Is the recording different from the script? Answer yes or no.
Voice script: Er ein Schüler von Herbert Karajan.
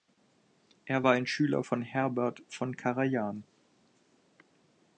yes